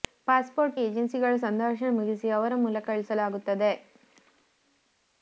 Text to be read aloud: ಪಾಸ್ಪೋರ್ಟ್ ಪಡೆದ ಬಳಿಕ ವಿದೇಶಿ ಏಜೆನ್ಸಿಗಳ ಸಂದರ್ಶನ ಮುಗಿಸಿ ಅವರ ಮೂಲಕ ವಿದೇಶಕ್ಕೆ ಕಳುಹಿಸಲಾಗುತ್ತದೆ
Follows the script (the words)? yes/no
no